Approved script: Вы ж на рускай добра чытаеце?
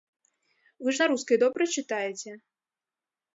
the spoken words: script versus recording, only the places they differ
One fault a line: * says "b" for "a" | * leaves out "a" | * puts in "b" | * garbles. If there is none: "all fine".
all fine